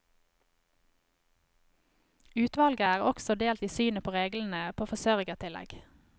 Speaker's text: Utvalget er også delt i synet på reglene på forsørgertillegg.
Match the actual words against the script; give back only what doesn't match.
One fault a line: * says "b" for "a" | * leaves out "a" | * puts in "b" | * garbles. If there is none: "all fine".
all fine